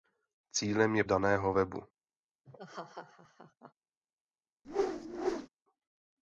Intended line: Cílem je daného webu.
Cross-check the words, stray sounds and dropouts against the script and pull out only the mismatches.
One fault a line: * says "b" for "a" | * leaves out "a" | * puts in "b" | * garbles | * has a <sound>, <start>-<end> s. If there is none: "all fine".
* has a laugh, 2.4-3.7 s
* has a whoosh, 4.6-5.5 s